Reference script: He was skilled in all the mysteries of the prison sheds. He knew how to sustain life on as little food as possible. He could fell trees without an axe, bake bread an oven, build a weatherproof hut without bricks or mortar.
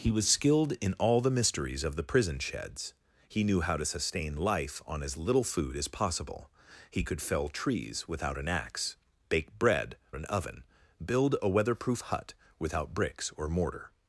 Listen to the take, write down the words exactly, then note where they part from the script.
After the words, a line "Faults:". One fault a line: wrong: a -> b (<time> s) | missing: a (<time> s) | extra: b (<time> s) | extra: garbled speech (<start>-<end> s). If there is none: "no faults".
He was skilled in all the mysteries of the prison sheds. He knew how to sustain life on as little food as possible. He could fell trees without an axe, bake bread an oven, build a weatherproof hut without bricks or mortar.
Faults:
no faults